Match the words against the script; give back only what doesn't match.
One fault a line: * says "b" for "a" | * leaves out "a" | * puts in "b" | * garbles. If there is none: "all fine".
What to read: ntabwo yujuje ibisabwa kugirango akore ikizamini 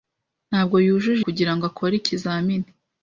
* leaves out "ibisabwa"